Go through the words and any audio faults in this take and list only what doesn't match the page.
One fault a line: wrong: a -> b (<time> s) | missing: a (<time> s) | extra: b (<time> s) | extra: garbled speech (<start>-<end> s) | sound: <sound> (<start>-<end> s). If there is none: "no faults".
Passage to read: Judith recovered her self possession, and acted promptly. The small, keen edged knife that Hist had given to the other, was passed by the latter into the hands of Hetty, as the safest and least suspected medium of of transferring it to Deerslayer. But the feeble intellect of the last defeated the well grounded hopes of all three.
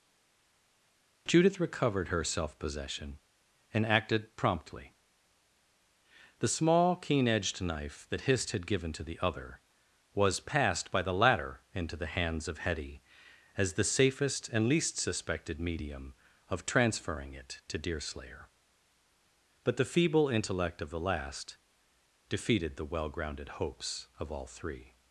missing: of (16.6 s)